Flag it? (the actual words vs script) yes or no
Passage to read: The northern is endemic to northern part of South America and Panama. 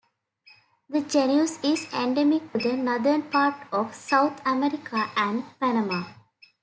yes